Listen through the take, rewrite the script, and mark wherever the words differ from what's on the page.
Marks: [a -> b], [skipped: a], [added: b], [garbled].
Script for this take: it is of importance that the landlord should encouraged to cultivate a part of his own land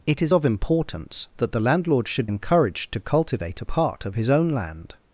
it is of importance that the landlord should encouraged to cultivate a part of his own land